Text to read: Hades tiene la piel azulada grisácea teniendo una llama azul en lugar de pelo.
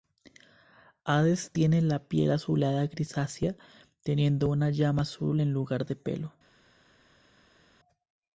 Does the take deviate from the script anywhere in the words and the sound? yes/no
no